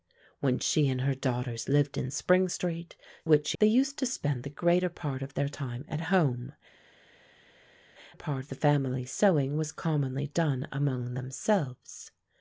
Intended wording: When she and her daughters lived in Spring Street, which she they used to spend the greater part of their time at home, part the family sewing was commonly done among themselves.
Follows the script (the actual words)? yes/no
yes